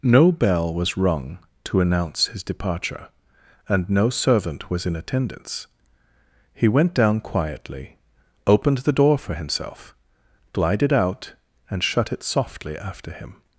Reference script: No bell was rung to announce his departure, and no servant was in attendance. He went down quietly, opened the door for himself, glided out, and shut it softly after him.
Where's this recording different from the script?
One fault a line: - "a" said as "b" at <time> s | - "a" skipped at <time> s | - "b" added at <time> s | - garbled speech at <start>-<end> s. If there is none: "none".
none